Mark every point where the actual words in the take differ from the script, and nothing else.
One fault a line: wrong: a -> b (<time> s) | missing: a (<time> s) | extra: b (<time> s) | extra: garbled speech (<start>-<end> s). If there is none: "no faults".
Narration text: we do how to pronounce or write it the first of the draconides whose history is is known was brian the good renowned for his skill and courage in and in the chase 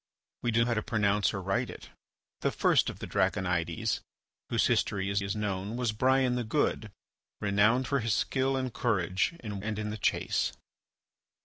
no faults